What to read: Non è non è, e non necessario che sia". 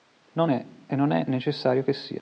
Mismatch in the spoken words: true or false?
true